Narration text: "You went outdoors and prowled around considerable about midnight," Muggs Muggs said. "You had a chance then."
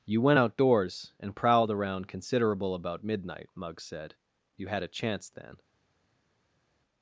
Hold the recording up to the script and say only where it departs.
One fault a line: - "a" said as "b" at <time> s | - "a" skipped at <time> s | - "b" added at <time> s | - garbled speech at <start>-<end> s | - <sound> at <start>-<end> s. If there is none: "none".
- "Muggs" skipped at 3.8 s